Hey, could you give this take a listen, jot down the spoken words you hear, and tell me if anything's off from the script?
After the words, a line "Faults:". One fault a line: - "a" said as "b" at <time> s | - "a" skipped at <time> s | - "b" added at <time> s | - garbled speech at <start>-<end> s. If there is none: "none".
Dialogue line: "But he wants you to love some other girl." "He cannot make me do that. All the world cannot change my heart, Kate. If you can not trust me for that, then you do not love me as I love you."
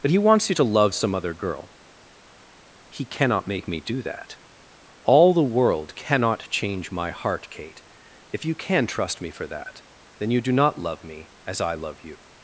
"But he wants you to love some other girl." "He cannot make me do that. All the world cannot change my heart, Kate. If you can trust me for that, then you do not love me as I love you."
Faults:
- "not" skipped at 8.9 s